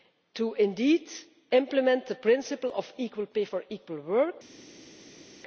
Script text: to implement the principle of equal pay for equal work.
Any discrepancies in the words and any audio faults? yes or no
no